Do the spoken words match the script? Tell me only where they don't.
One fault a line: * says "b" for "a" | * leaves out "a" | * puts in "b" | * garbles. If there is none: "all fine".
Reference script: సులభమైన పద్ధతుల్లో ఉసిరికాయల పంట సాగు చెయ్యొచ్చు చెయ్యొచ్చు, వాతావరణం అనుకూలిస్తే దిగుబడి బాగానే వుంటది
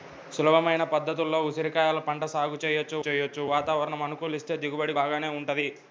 all fine